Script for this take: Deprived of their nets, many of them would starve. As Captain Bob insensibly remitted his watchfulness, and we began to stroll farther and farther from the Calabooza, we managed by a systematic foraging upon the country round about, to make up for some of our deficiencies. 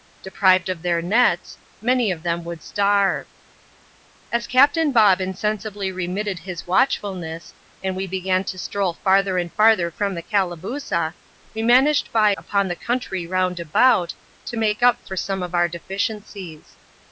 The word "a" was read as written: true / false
false